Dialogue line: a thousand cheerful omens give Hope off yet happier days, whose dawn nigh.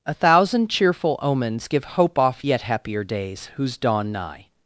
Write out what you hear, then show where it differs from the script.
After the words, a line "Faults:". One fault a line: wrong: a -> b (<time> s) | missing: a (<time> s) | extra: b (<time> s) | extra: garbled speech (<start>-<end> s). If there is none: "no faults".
a thousand cheerful omens give Hope off yet happier days, whose dawn nigh.
Faults:
no faults